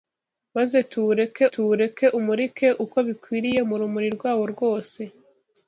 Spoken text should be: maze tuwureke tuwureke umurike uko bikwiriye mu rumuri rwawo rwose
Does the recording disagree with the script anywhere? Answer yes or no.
no